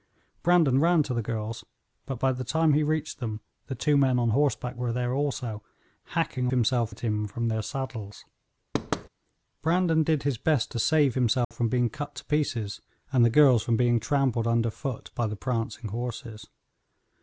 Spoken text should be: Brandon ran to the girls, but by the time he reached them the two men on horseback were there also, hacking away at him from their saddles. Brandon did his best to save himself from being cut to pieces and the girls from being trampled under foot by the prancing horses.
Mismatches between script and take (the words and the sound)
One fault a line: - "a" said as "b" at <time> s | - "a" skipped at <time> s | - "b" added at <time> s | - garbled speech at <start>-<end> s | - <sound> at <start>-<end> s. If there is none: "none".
- "away" said as "himself" at 6.5 s
- thud at 8.7-9.1 s
- dropout at 11.4-11.5 s